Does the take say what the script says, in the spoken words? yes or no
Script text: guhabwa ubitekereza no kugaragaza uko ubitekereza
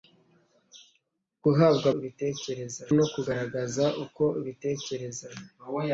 yes